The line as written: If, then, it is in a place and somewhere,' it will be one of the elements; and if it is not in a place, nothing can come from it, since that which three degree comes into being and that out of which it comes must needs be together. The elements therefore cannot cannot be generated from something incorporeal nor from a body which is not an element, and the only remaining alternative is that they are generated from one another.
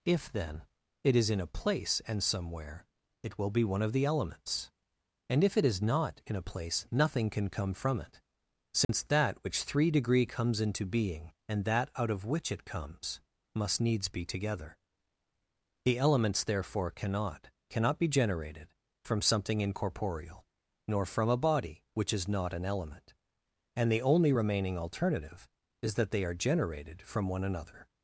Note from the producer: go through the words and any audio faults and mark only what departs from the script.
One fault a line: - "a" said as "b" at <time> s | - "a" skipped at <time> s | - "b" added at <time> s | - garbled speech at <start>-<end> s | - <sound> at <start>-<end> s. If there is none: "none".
- dropout at 8.8-8.9 s